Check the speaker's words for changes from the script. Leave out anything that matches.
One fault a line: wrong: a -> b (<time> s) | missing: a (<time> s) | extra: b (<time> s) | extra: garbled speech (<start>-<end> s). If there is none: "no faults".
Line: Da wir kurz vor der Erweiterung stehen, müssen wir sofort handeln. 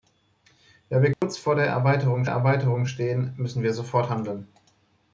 extra: Erweiterung (2.3 s)